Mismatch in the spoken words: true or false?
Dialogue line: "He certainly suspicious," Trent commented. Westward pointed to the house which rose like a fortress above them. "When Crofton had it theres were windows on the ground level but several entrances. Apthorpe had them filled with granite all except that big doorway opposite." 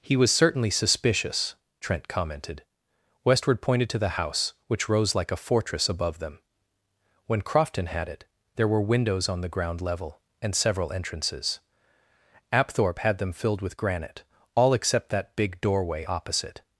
true